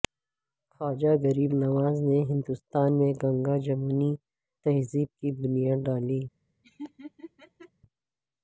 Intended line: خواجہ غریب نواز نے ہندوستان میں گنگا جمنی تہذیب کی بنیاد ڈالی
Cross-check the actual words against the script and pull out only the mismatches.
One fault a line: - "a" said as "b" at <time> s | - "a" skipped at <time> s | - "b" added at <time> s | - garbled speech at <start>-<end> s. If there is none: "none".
none